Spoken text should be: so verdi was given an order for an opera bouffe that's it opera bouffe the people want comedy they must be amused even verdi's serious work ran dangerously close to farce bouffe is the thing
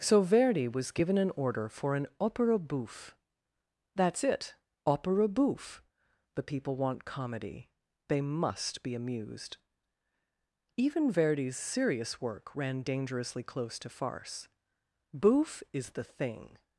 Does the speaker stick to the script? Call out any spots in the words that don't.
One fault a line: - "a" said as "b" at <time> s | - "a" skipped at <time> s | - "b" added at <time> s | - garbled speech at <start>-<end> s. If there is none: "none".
none